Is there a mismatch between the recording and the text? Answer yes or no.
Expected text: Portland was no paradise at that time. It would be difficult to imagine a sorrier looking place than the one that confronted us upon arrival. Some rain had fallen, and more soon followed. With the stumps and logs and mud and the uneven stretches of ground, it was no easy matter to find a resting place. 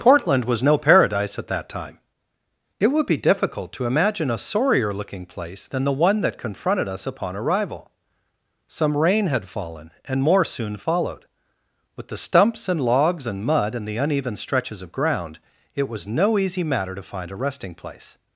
no